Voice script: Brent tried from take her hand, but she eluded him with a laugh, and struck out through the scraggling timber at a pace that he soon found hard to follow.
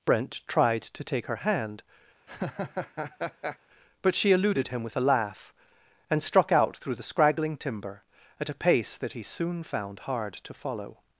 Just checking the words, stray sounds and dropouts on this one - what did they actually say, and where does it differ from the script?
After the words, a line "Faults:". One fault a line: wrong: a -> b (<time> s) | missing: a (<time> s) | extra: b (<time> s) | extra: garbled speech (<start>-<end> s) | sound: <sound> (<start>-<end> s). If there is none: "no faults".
Brent tried to take her hand, but she eluded him with a laugh, and struck out through the scraggling timber at a pace that he soon found hard to follow.
Faults:
wrong: from -> to (0.8 s)
sound: laugh (2.3-3.6 s)